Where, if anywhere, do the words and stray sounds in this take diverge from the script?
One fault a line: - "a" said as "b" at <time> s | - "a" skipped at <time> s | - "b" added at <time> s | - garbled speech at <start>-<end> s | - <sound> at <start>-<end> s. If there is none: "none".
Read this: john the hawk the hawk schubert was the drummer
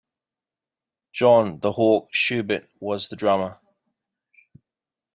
- "the hawk" skipped at 2.1 s